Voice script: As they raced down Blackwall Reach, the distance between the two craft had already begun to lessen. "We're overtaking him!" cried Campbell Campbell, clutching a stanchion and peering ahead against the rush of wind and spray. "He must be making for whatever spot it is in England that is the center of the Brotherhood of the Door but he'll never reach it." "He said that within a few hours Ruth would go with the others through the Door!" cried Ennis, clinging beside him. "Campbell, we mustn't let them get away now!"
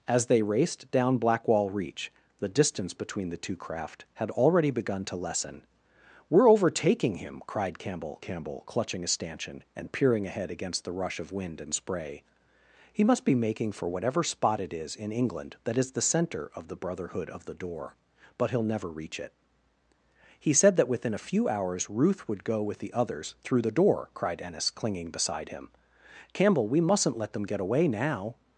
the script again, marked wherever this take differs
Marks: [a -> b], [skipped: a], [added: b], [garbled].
As they raced down Blackwall Reach, the distance between the two craft had already begun to lessen. "We're overtaking him!" cried Campbell Campbell, clutching a stanchion and peering ahead against the rush of wind and spray. "He must be making for whatever spot it is in England that is the center of the Brotherhood of the Door but he'll never reach it." "He said that within a few hours Ruth would go with the others through the Door!" cried Ennis, clinging beside him. "Campbell, we mustn't let them get away now!"